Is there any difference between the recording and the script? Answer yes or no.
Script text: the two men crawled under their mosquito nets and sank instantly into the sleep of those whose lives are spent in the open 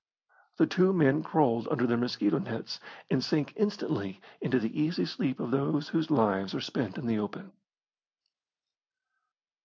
yes